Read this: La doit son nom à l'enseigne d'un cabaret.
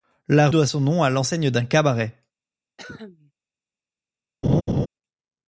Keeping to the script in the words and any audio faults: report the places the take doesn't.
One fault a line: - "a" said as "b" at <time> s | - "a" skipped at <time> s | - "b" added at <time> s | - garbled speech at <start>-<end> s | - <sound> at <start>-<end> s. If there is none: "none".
- cough at 2.8-3.3 s
- laugh at 4.4-4.9 s